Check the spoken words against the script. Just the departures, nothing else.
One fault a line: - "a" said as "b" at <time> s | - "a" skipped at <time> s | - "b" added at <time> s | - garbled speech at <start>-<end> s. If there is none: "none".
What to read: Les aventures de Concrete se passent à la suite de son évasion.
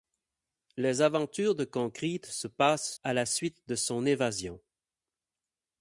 none